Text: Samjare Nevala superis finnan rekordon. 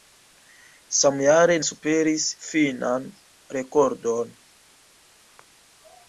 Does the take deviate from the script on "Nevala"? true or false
true